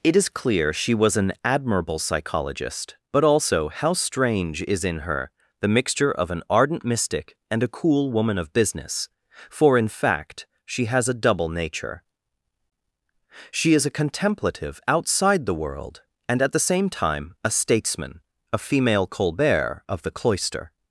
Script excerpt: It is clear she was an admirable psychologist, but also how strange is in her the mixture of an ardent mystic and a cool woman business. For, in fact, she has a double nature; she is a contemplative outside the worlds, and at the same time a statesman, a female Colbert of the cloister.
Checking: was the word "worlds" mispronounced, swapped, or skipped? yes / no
yes